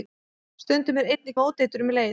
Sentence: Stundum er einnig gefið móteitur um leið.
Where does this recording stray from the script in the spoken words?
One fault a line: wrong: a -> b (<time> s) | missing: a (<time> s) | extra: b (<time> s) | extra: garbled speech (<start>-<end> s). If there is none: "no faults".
missing: gefið (1.4 s)